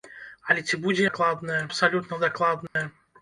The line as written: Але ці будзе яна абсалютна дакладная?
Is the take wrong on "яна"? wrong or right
wrong